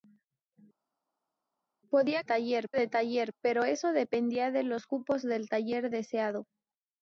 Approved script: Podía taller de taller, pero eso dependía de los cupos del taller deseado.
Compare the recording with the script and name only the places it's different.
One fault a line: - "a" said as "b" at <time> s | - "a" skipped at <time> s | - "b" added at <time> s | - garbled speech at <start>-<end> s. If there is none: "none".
none